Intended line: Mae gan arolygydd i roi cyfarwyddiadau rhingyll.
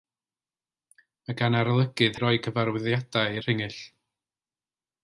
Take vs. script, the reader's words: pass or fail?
pass